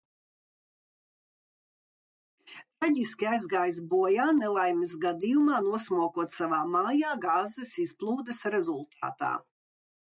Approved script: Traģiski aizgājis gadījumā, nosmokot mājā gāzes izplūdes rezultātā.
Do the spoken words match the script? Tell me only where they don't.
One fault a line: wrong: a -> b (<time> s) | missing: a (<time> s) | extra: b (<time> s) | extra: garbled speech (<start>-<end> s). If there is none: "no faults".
extra: bojā nelaimes (3.9 s)
extra: savā (6.4 s)